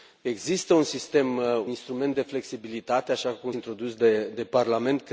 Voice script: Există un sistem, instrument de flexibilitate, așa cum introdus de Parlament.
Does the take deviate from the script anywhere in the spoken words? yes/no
no